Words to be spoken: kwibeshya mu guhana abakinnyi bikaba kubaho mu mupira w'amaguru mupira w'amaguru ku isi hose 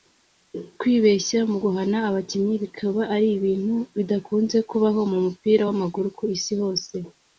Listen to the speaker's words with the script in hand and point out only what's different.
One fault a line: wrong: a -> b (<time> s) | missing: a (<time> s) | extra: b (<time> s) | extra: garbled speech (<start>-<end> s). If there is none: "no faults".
extra: ari ibintu bidakunze (3.1 s)
missing: mupira w'amaguru (6.1 s)